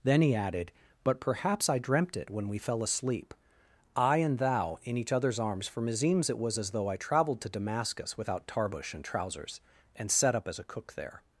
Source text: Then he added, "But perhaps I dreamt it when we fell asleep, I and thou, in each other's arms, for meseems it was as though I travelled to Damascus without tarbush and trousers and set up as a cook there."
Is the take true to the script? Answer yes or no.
yes